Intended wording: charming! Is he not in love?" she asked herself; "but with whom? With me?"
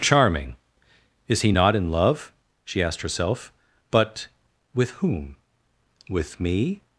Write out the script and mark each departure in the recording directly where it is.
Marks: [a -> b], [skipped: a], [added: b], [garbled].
charming! Is he not in love?" she asked herself; "but with whom? With me?"